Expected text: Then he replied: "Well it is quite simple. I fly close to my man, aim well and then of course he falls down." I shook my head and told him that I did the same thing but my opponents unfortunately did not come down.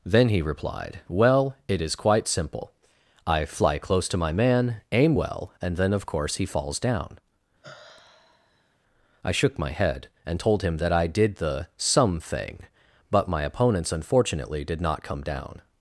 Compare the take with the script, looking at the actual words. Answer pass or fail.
fail